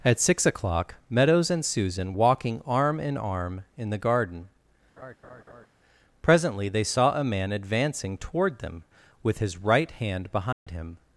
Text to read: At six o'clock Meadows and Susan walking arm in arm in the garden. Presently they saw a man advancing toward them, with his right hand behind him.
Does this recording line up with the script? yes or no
yes